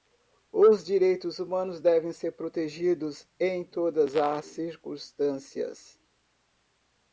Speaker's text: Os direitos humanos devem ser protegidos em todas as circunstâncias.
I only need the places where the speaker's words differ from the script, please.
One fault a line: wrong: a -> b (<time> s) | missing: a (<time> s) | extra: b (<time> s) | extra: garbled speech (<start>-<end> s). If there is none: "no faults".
no faults